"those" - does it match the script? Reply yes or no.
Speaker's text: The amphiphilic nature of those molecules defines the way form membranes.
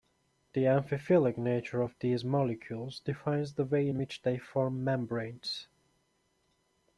no